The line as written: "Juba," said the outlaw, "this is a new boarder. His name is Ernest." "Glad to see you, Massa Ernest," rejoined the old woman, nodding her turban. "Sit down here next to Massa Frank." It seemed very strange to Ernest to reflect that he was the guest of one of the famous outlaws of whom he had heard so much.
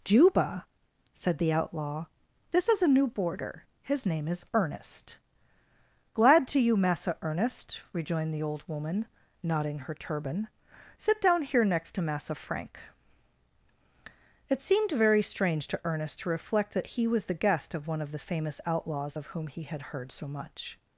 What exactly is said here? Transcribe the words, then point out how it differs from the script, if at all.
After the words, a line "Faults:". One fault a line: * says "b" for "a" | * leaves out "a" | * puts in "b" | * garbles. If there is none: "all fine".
"Juba," said the outlaw, "this is a new boarder. His name is Ernest." "Glad to you, Massa Ernest," rejoined the old woman, nodding her turban. "Sit down here next to Massa Frank." It seemed very strange to Ernest to reflect that he was the guest of one of the famous outlaws of whom he had heard so much.
Faults:
* leaves out "see"